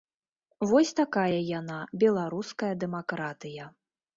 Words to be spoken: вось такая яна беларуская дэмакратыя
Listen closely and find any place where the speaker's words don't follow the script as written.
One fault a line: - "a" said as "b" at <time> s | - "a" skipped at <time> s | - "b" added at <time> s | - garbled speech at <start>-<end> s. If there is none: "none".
none